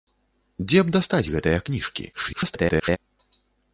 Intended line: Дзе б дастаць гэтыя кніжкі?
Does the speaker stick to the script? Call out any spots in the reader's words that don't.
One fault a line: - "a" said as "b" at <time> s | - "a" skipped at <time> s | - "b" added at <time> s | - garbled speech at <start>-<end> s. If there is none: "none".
- garbled speech at 2.1-3.0 s